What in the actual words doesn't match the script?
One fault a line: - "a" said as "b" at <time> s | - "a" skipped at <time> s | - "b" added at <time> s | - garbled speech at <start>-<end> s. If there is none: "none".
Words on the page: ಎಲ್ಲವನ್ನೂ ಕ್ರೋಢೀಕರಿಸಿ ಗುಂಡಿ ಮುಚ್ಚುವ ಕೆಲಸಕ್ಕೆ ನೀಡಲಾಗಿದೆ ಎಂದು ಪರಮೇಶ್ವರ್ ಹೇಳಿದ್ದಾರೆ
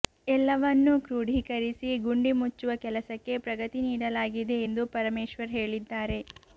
- "ಪ್ರಗತಿ" added at 3.5 s